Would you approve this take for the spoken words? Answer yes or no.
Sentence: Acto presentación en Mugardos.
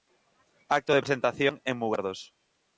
no